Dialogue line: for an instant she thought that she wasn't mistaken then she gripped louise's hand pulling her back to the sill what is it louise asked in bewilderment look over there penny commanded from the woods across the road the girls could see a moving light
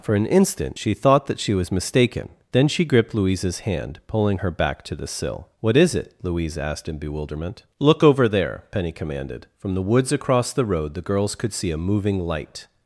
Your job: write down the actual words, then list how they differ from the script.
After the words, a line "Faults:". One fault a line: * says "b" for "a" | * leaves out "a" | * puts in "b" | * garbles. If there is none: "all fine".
for an instant she thought that she was mistaken then she gripped louise's hand pulling her back to the sill what is it louise asked in bewilderment look over there penny commanded from the woods across the road the girls could see a moving light
Faults:
* says "was" for "wasn't"